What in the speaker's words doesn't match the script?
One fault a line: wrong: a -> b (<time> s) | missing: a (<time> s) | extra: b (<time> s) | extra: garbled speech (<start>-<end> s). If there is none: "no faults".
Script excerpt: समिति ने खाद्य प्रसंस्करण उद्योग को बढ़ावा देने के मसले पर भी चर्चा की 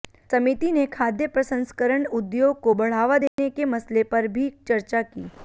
no faults